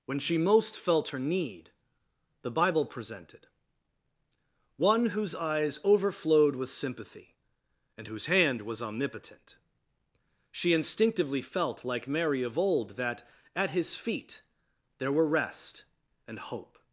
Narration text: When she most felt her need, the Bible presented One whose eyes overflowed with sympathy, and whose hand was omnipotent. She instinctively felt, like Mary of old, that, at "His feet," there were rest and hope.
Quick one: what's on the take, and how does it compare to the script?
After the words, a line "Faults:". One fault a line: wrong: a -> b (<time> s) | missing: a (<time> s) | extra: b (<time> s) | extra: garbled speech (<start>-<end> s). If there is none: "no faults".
When she most felt her need, the Bible presented One whose eyes overflowed with sympathy, and whose hand was omnipotent. She instinctively felt, like Mary of old, that, at "His feet," there were rest and hope.
Faults:
no faults